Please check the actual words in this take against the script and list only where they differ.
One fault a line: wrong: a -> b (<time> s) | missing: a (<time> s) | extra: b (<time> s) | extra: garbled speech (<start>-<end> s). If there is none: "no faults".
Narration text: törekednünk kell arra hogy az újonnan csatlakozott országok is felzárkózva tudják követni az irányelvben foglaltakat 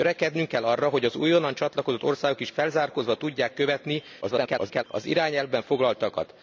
extra: garbled speech (4.2-4.8 s)